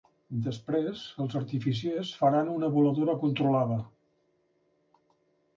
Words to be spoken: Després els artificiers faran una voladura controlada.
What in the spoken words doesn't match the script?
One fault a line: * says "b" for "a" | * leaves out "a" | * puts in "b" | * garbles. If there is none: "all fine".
all fine